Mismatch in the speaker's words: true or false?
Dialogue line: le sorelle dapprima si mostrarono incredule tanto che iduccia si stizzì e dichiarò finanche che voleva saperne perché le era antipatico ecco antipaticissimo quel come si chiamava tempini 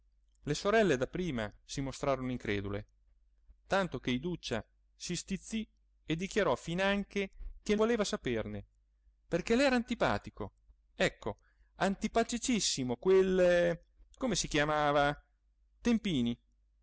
false